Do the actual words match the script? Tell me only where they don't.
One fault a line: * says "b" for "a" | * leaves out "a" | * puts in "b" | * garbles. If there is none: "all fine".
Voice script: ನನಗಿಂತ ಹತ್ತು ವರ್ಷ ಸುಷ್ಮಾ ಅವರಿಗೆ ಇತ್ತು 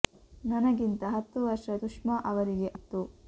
all fine